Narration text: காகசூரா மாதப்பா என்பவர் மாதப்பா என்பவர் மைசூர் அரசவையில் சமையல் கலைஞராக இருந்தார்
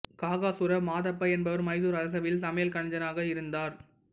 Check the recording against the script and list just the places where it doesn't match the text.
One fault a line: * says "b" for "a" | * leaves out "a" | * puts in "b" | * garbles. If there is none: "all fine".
* leaves out "மாதப்பா என்பவர்"